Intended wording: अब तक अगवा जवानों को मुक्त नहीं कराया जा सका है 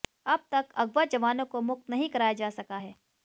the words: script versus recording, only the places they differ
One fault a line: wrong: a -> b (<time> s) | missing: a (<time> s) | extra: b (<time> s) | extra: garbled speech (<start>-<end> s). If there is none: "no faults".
no faults